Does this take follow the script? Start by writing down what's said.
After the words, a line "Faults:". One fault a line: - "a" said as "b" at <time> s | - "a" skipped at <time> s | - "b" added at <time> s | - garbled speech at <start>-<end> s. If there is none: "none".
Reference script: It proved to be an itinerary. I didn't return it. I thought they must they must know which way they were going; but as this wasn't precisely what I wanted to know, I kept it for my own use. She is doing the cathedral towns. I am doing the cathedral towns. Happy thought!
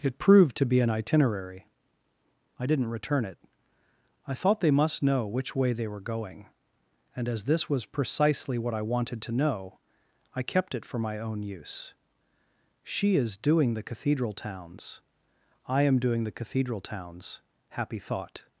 It proved to be an itinerary. I didn't return it. I thought they must know which way they were going; and as this was precisely what I wanted to know, I kept it for my own use. She is doing the cathedral towns. I am doing the cathedral towns. Happy thought!
Faults:
- "they must" skipped at 5.0 s
- "but" said as "and" at 7.2 s
- "wasn't" said as "was" at 7.7 s